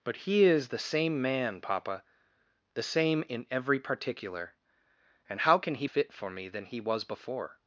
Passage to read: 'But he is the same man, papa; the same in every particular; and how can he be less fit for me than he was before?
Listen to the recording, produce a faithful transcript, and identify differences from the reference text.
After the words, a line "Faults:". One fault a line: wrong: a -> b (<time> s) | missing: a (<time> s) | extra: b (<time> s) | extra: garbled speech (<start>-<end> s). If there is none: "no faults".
'But he is the same man, papa; the same in every particular; and how can he fit for me than he was before?
Faults:
missing: be less (5.8 s)